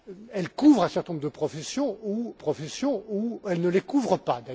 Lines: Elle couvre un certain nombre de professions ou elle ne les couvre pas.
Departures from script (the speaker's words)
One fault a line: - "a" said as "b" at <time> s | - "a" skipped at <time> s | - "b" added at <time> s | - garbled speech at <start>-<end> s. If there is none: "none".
- "professions ou" added at 2.3 s